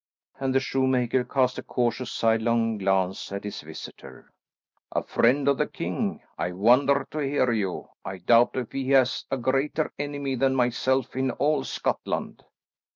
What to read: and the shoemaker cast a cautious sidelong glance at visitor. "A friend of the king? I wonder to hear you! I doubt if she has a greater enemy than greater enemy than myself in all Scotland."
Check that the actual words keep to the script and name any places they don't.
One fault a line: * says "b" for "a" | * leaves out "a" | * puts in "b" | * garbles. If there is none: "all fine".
* puts in "his"
* says "he" for "she"
* leaves out "greater enemy than"